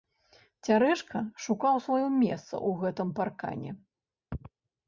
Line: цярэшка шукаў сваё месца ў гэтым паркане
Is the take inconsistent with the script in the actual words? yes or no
no